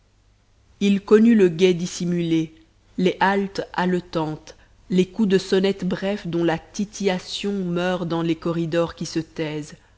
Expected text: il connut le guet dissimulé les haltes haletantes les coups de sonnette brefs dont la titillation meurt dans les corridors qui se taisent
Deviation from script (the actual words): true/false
false